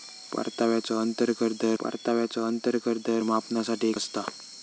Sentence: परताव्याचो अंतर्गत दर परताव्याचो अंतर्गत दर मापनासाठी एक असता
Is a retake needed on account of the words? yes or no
no